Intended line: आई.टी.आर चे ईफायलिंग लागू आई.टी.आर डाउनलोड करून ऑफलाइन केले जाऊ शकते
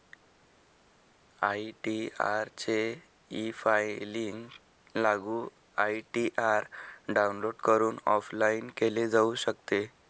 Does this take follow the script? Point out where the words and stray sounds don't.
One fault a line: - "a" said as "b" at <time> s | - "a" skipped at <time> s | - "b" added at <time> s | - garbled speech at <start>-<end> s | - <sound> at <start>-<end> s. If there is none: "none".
none